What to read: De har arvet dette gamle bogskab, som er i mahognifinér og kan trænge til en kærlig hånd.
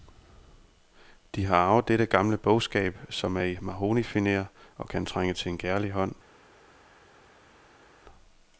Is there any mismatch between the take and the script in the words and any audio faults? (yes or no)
no